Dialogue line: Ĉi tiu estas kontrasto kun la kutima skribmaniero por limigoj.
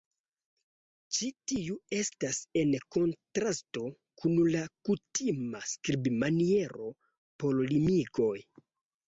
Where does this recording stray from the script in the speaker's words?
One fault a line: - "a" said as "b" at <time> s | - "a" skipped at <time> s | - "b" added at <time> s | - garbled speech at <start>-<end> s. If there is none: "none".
- "en" added at 2.6 s